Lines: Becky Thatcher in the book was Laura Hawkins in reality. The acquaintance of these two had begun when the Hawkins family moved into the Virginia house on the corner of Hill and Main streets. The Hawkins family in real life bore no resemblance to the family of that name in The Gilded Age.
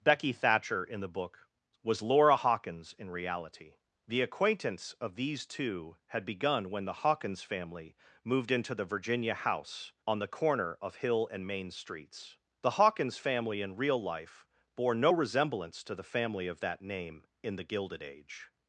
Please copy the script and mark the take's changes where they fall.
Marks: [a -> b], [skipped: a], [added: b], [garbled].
Becky Thatcher in the book was Laura Hawkins in reality. The acquaintance of these two had begun when the Hawkins family moved into the Virginia house on the corner of Hill and Main streets. The Hawkins family in real life bore no resemblance to the family of that name in The Gilded Age.